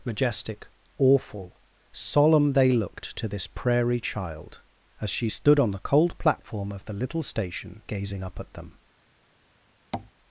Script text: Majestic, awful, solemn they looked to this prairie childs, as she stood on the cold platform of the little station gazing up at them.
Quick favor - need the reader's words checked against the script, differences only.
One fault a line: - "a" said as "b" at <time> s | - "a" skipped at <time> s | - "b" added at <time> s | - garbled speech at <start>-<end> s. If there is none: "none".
- "childs" said as "child" at 4.0 s